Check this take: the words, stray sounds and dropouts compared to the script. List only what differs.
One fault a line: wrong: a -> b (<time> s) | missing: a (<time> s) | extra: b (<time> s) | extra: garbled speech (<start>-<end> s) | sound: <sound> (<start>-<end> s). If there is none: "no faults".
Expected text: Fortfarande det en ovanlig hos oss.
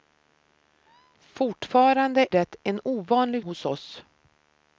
no faults